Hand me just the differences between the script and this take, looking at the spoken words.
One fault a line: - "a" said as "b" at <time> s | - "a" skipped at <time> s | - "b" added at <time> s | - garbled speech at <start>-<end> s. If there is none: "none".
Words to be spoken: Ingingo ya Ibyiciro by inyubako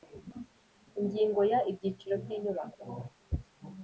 none